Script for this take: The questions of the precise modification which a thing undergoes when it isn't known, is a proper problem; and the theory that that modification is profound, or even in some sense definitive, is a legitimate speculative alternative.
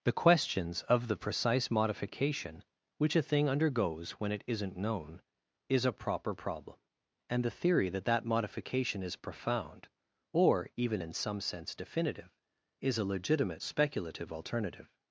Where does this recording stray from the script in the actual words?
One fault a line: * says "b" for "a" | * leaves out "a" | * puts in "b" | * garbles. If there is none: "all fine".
all fine